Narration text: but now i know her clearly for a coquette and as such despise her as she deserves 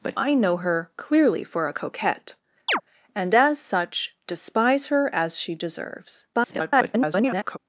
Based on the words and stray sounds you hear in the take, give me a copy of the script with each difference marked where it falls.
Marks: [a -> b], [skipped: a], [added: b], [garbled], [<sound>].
but [skipped: now] i know her clearly for a coquette [chirp] and as such despise her as she deserves [garbled]